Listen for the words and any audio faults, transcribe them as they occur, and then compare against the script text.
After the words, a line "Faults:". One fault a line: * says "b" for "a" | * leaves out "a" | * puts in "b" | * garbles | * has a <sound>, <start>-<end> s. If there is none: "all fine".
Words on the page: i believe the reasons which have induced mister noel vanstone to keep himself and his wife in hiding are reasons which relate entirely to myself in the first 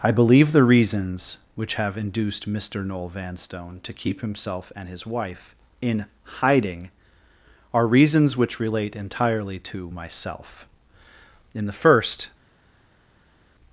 i believe the reasons which have induced mister noel vanstone to keep himself and his wife in hiding are reasons which relate entirely to myself in the first
Faults:
all fine